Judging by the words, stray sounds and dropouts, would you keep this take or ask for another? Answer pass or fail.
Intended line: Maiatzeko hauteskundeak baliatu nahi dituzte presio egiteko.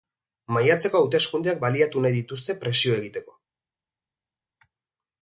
pass